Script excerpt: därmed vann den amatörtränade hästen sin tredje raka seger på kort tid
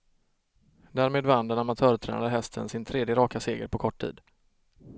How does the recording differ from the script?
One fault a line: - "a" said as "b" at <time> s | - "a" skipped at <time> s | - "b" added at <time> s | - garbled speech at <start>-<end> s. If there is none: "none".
none